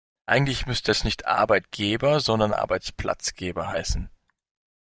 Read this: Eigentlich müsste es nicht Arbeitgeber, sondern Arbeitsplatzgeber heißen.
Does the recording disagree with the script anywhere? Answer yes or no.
no